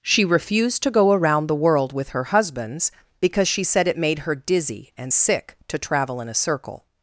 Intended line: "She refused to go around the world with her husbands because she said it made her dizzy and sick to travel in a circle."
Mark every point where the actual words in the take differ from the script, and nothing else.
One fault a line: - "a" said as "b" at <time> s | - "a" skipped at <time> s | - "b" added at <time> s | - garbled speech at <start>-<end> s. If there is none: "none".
none